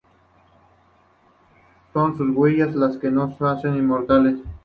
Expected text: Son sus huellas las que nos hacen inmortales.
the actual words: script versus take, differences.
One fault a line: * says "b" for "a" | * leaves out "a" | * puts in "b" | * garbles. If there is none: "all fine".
all fine